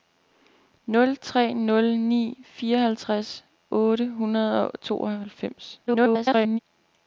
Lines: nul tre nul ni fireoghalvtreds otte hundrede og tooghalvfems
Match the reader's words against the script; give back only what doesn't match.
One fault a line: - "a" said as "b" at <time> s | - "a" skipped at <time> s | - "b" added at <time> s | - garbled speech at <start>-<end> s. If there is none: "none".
- garbled speech at 5.9-6.6 s